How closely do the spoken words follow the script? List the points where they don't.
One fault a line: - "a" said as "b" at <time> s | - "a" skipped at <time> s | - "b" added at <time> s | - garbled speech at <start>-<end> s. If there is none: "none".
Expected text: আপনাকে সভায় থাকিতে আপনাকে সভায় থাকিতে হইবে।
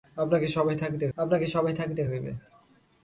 none